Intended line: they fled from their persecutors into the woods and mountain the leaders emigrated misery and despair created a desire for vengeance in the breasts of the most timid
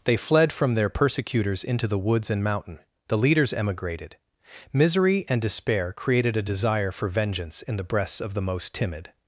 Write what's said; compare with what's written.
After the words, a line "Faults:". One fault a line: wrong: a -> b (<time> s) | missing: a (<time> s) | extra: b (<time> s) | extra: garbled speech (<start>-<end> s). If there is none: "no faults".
they fled from their persecutors into the woods and mountain the leaders emigrated misery and despair created a desire for vengeance in the breasts of the most timid
Faults:
no faults